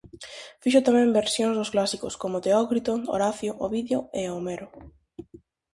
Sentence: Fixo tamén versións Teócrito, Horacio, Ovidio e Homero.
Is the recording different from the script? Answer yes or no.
yes